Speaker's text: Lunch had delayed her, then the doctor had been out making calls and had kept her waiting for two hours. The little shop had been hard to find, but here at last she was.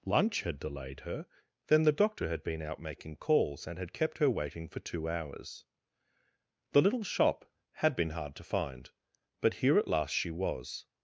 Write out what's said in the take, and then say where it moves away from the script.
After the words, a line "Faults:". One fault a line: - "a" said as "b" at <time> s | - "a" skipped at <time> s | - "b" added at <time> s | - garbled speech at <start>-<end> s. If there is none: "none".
Lunch had delayed her, then the doctor had been out making calls and had kept her waiting for two hours. The little shop had been hard to find, but here at last she was.
Faults:
none